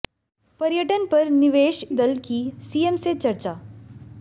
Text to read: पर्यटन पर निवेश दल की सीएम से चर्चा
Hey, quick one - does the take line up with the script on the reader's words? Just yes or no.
yes